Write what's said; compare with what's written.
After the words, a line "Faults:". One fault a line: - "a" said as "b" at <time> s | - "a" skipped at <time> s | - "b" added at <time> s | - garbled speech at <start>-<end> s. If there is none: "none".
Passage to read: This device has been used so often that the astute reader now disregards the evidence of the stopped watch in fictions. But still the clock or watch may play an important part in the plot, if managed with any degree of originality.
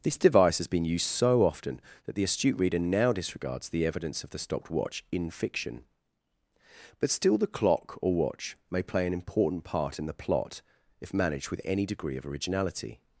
This device has been used so often that the astute reader now disregards the evidence of the stopped watch in fiction. But still the clock or watch may play an important part in the plot, if managed with any degree of originality.
Faults:
- "fictions" said as "fiction" at 5.3 s